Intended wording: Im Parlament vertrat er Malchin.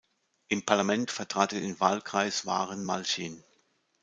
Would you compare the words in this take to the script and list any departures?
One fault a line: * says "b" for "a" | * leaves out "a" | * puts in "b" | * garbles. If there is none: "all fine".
* puts in "den Wahlkreis Waren"